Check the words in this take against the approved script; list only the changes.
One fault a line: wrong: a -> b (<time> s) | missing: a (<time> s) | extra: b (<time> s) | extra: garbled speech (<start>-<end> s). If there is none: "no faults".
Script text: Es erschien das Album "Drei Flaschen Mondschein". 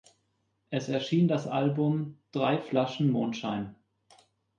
no faults